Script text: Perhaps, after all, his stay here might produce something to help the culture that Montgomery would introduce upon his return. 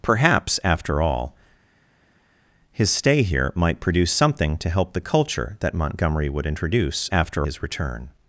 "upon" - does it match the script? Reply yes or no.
no